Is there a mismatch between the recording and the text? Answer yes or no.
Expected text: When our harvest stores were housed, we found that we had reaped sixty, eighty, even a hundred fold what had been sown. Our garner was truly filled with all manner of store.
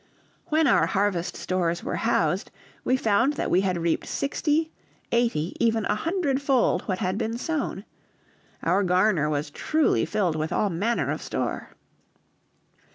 no